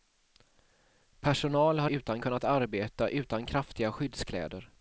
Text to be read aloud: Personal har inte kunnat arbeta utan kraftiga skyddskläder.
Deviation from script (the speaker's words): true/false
true